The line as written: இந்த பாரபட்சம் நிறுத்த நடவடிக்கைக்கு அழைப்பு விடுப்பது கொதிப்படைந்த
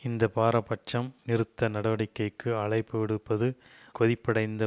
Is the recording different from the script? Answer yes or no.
no